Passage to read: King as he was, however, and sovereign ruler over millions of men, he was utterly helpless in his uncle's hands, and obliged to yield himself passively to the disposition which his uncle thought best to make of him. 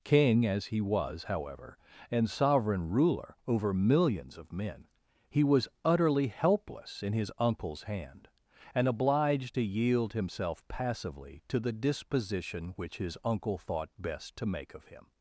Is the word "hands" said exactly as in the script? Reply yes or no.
no